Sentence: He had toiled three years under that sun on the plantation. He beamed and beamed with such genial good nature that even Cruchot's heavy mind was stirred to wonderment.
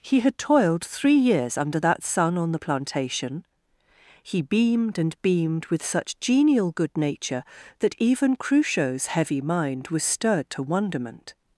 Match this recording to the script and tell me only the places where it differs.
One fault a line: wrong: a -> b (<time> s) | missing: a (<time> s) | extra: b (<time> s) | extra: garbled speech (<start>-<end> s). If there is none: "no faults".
no faults